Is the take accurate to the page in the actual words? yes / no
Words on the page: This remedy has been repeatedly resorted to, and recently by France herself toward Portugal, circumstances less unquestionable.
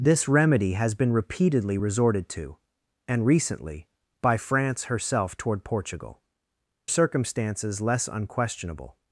yes